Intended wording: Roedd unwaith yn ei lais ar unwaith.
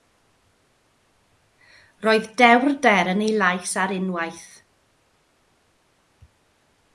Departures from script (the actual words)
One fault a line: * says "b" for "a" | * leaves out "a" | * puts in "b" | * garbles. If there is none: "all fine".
* says "dewrder" for "unwaith"